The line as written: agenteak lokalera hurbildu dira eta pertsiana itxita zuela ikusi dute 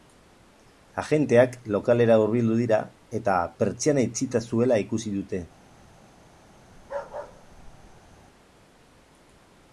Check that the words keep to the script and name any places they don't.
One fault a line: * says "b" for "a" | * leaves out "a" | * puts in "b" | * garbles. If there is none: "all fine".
all fine